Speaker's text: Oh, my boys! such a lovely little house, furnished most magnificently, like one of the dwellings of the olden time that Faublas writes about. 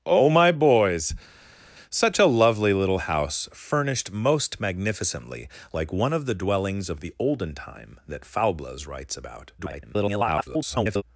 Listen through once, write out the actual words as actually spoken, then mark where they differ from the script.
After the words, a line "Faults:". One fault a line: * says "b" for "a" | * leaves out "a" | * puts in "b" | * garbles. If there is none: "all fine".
Oh, my boys! such a lovely little house, furnished most magnificently, like one of the dwellings of the olden time that Faublas writes about. [garbled]
Faults:
* garbles